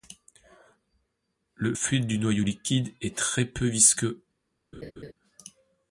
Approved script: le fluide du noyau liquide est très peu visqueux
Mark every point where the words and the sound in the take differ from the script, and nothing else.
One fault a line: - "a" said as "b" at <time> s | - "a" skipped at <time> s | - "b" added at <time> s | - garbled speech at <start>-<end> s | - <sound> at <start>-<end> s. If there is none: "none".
- laugh at 4.7-5.1 s